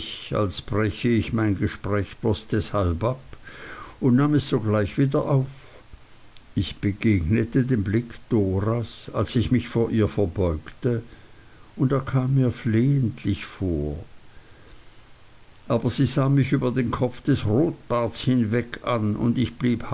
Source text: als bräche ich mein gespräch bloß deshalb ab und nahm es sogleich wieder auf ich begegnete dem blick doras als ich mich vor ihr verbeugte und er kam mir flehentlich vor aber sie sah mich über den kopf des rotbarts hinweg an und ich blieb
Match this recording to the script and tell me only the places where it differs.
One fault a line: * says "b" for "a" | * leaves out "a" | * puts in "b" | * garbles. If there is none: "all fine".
all fine